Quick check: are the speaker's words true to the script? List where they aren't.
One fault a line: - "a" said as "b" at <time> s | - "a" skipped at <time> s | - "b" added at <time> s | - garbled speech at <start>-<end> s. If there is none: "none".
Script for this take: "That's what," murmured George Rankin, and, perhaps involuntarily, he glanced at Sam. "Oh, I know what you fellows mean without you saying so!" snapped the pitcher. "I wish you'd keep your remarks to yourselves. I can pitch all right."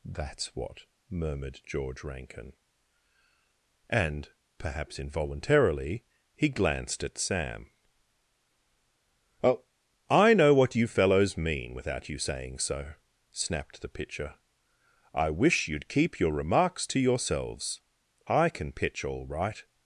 none